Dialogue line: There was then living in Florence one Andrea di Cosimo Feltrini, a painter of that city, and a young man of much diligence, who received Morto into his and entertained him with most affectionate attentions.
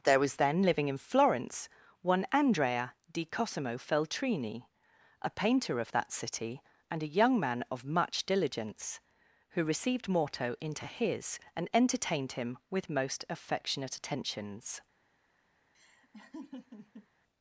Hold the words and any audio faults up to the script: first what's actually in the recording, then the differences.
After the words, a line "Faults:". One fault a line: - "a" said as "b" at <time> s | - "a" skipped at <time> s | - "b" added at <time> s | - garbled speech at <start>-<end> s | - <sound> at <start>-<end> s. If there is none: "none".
There was then living in Florence one Andrea di Cosimo Feltrini, a painter of that city, and a young man of much diligence, who received Morto into his and entertained him with most affectionate attentions.
Faults:
- laugh at 15.7-17.1 s